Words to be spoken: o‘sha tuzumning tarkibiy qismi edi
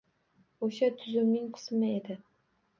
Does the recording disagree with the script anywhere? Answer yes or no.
yes